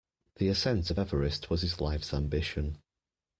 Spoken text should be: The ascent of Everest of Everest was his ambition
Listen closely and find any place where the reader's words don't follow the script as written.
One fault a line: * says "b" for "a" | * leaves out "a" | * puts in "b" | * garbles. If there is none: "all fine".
* leaves out "of Everest"
* puts in "life's"